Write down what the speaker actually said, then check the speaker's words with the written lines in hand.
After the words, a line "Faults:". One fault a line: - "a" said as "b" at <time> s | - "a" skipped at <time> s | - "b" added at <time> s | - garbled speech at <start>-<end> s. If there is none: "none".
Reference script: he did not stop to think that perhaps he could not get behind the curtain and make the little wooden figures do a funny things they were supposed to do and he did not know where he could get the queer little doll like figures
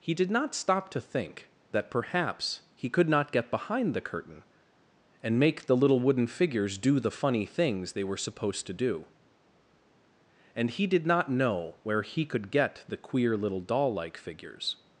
he did not stop to think that perhaps he could not get behind the curtain and make the little wooden figures do the funny things they were supposed to do and he did not know where he could get the queer little doll like figures
Faults:
- "a" said as "the" at 7.0 s